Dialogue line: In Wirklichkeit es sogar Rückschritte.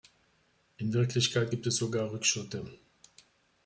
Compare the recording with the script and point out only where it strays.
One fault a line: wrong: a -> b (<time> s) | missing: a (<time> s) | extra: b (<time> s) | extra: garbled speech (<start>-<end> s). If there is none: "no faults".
extra: gibt (1.5 s)